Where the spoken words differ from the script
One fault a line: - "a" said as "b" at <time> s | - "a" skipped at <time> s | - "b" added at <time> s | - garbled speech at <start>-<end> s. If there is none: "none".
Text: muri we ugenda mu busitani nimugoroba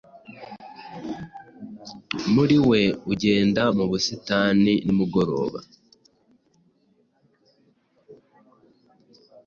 none